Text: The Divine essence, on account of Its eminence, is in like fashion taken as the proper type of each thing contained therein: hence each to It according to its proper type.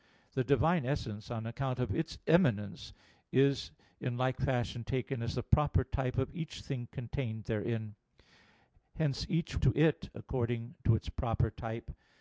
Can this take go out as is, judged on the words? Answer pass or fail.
pass